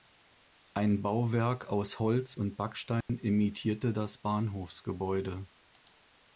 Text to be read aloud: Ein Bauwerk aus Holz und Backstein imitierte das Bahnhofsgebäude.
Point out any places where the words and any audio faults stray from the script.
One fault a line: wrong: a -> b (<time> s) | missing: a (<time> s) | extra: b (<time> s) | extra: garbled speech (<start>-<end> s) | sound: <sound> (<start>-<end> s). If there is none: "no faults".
sound: dropout (3.0-3.1 s)